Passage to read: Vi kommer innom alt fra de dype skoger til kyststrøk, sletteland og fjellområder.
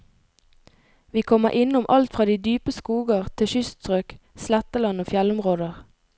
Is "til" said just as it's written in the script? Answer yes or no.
yes